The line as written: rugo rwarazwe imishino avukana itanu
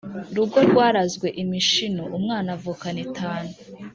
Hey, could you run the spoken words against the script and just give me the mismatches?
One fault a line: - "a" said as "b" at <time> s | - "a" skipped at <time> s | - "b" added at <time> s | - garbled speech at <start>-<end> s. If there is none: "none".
- "umwana" added at 2.2 s